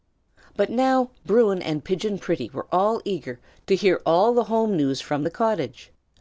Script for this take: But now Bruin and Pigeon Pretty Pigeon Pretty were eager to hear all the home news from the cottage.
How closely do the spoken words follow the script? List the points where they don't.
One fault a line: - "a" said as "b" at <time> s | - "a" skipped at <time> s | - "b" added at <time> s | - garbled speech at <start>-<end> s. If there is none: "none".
- "Pigeon Pretty" skipped at 2.5 s